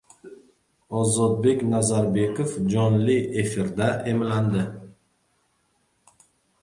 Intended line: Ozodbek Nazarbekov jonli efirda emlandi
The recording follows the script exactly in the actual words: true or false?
true